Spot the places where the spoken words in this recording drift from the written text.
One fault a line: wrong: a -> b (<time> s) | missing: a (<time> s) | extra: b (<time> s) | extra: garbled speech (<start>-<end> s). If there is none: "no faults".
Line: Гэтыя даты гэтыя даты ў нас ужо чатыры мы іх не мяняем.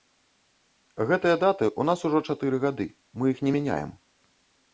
missing: гэтыя даты (1.6 s)
extra: гады (2.7 s)